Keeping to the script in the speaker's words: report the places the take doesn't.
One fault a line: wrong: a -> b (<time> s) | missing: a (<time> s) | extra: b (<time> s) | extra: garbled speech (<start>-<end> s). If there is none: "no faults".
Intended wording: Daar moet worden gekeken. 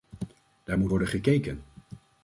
no faults